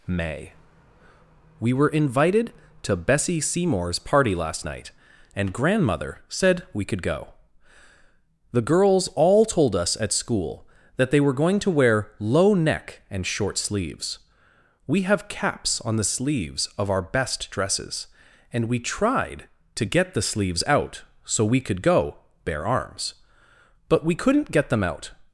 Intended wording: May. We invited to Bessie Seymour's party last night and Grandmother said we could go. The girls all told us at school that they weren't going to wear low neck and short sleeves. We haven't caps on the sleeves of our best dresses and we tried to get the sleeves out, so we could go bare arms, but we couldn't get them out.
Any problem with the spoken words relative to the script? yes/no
yes